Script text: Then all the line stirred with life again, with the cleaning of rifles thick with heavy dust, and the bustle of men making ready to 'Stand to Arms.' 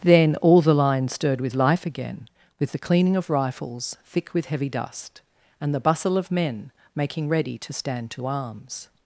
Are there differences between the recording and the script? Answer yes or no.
no